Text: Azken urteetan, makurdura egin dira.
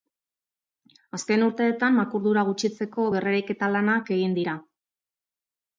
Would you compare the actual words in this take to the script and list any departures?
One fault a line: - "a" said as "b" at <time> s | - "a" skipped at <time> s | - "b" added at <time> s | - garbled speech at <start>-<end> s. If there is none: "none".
- "gutxitzeko berreraiketa lanak" added at 2.5 s